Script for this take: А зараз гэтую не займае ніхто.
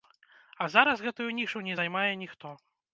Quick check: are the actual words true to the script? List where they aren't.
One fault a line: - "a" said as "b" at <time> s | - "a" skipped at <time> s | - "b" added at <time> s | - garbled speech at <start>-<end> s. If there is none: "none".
- "нішу" added at 1.4 s